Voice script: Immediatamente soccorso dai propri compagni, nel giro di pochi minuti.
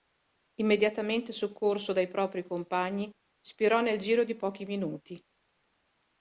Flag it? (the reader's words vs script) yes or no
yes